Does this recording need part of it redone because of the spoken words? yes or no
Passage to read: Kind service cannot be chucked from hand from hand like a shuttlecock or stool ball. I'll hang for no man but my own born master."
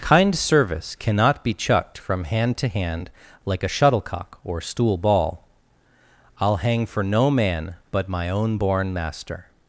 yes